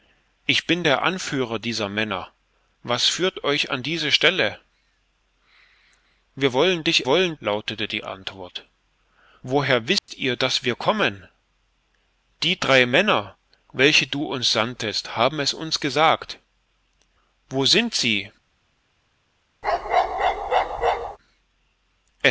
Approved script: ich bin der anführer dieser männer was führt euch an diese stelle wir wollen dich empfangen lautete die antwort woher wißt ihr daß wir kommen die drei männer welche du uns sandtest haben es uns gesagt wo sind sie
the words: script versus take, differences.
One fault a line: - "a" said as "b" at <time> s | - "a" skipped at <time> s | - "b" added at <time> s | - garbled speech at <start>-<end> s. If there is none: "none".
- "empfangen" said as "wollen" at 7.1 s